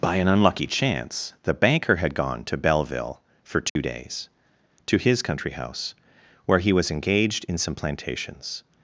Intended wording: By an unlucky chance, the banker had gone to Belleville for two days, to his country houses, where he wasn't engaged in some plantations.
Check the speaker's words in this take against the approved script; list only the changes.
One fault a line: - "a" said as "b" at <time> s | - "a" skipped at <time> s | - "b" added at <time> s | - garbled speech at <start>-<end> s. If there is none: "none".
- "houses" said as "house" at 5.5 s
- "wasn't" said as "was" at 6.7 s